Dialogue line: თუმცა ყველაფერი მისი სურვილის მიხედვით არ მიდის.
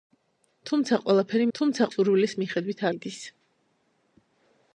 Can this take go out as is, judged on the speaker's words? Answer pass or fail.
fail